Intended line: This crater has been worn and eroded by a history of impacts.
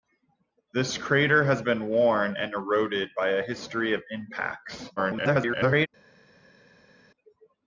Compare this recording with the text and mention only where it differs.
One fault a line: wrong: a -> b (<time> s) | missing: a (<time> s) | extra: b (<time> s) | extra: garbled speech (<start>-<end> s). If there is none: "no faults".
extra: garbled speech (5.0-5.9 s)